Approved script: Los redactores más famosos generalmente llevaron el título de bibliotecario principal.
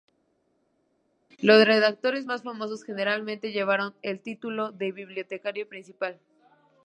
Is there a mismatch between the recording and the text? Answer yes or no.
no